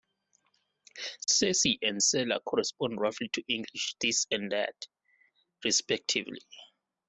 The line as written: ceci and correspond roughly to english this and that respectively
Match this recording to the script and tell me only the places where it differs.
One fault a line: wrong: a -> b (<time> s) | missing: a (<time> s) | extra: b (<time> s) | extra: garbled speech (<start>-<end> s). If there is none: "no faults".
extra: cela (2.0 s)